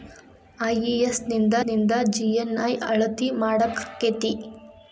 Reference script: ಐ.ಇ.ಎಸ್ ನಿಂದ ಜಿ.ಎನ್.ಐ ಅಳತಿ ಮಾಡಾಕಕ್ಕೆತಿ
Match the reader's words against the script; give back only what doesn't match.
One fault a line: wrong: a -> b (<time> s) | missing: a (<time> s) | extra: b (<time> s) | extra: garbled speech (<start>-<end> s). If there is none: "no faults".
extra: ನಿಂದ (1.6 s)